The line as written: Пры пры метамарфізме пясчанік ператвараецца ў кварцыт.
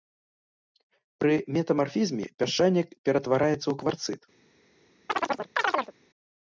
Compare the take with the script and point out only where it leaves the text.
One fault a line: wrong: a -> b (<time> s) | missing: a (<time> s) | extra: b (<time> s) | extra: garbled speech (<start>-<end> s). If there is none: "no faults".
missing: пры (1.3 s)